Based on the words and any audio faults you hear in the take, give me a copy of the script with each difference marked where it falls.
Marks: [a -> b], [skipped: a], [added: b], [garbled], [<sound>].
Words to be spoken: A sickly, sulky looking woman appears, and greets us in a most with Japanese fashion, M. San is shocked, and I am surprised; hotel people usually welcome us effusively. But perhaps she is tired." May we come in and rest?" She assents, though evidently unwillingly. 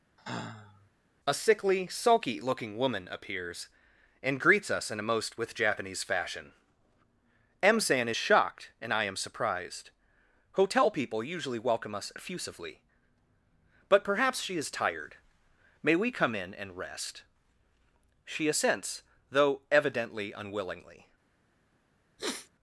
[sigh] A sickly, sulky looking woman appears, and greets us in a most with Japanese fashion, M. San is shocked, and I am surprised; hotel people usually welcome us effusively. But perhaps she is tired." May we come in and rest?" She assents, though evidently unwillingly. [sniff]